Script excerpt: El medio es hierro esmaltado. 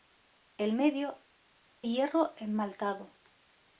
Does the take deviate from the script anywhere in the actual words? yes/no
yes